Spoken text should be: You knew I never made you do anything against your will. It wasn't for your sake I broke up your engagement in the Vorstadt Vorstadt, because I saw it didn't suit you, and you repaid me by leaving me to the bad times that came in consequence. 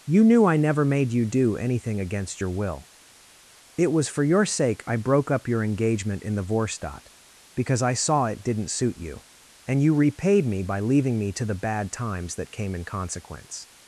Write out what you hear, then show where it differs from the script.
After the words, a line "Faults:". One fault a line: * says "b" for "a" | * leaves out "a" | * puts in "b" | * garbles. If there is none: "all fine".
You knew I never made you do anything against your will. It was for your sake I broke up your engagement in the Vorstadt, because I saw it didn't suit you, and you repaid me by leaving me to the bad times that came in consequence.
Faults:
* says "was" for "wasn't"
* leaves out "Vorstadt"